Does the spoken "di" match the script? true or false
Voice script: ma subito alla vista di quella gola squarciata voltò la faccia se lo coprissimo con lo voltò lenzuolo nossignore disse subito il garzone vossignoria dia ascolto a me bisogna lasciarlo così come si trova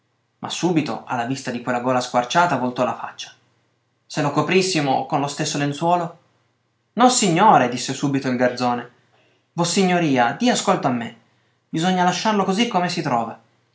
true